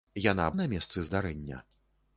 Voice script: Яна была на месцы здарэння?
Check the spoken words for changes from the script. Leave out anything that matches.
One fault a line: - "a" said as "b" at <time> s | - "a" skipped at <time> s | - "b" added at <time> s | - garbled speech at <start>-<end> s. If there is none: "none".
- "была" skipped at 0.5 s